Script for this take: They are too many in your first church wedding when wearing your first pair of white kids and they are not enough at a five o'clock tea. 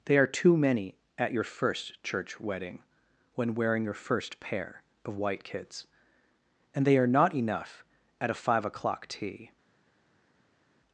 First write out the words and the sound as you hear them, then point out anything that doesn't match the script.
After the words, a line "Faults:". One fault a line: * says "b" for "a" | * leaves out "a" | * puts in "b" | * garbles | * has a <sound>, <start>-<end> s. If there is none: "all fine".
They are too many at your first church wedding when wearing your first pair of white kids and they are not enough at a five o'clock tea.
Faults:
* says "at" for "in"